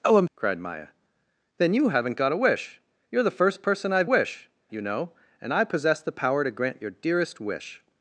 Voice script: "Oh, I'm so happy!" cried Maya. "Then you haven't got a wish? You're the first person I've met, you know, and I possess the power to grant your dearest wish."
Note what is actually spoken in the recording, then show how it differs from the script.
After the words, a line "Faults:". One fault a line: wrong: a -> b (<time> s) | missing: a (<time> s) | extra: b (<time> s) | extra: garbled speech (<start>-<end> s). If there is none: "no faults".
"Oh, I'm!" cried Maya. "Then you haven't got a wish? You're the first person I've wish, you know, and I possess the power to grant your dearest wish."
Faults:
missing: so happy (0.3 s)
wrong: met -> wish (4.1 s)